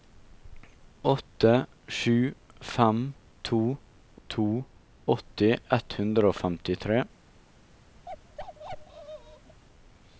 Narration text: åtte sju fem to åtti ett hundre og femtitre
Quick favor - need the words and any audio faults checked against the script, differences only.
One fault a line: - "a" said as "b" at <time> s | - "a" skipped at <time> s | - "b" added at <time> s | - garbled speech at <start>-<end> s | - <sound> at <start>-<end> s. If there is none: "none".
- "to" added at 4.3 s
- bark at 8.1-9.6 s